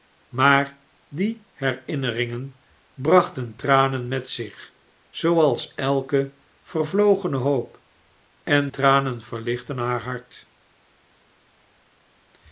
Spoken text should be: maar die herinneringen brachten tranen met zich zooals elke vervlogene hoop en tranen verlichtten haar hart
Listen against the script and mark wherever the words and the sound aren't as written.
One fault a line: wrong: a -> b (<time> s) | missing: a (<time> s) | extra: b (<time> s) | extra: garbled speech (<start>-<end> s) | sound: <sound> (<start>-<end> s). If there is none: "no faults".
no faults